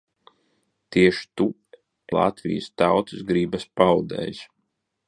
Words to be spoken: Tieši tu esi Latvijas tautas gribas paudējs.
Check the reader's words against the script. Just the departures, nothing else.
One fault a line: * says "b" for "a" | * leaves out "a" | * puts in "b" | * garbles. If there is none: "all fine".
* leaves out "esi"